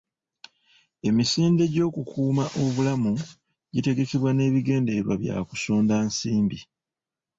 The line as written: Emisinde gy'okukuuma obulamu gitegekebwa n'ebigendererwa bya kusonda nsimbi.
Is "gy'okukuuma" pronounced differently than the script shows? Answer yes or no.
no